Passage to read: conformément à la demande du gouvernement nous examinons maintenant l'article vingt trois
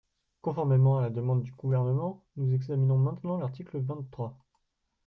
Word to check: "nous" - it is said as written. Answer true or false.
true